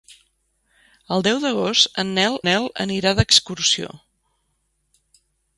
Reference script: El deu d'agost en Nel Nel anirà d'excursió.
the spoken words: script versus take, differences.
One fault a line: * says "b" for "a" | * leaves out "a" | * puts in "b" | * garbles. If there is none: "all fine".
all fine